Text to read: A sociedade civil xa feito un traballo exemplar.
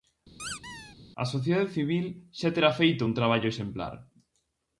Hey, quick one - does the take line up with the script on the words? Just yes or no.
no